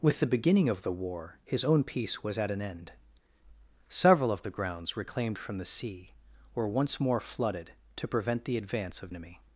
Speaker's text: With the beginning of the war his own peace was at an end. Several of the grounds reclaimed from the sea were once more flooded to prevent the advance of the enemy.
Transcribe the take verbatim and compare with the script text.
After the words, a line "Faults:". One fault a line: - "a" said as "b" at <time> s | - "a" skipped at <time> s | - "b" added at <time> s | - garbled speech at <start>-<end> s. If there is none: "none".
With the beginning of the war his own peace was at an end. Several of the grounds reclaimed from the sea were once more flooded to prevent the advance of enemy.
Faults:
- "the" skipped at 9.1 s